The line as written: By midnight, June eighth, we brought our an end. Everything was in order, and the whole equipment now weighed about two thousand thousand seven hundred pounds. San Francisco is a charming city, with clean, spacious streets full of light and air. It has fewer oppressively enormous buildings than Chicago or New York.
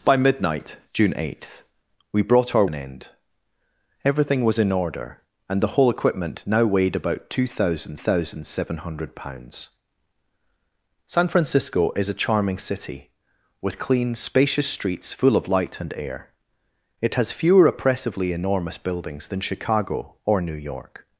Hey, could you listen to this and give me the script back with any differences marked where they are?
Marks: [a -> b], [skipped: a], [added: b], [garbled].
By midnight, June eighth, we brought our an end. Everything was in order, and the whole equipment now weighed about two thousand thousand seven hundred pounds. San Francisco is a charming city, with clean, spacious streets full of light and air. It has fewer oppressively enormous buildings than Chicago or New York.